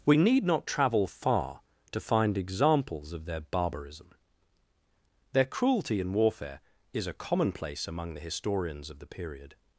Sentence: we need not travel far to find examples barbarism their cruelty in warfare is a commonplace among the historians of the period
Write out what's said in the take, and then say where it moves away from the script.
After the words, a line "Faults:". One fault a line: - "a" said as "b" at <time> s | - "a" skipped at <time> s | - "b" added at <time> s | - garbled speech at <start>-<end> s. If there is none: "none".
we need not travel far to find examples of their barbarism their cruelty in warfare is a commonplace among the historians of the period
Faults:
- "of their" added at 3.1 s